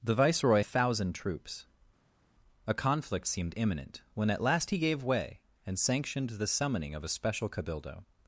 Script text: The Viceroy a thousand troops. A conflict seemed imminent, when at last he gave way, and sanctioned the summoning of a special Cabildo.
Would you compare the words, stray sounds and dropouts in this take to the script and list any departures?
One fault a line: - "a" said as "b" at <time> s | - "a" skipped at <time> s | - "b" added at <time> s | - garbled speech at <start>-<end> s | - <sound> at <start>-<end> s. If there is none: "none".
none